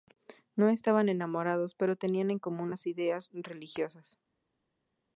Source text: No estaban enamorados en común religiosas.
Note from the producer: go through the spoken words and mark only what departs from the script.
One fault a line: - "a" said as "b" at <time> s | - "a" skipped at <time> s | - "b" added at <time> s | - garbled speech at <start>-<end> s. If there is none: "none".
- "pero tenían" added at 1.8 s
- "las ideas" added at 2.7 s